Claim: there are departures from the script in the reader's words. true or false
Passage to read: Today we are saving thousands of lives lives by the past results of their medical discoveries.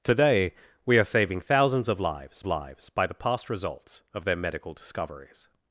false